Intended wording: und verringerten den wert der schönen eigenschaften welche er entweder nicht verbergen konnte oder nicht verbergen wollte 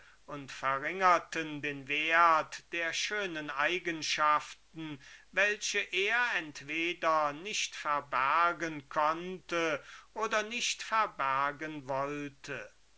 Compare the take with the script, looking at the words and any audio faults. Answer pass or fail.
pass